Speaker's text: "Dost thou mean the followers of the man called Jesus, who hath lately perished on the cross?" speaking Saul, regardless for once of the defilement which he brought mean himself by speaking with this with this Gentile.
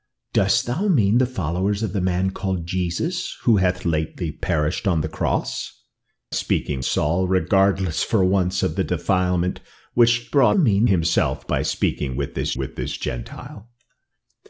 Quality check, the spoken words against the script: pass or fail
pass